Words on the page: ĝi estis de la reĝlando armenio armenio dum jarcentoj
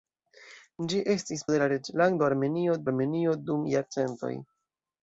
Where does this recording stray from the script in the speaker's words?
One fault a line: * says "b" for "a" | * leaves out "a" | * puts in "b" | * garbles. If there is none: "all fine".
all fine